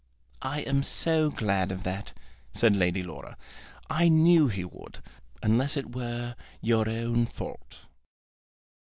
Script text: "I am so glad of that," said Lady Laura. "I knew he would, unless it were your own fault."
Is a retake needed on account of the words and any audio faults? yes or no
no